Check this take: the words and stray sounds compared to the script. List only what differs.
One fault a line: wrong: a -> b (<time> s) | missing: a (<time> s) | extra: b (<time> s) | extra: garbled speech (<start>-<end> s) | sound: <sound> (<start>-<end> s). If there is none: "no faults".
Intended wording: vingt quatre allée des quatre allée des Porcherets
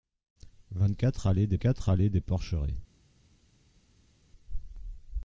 no faults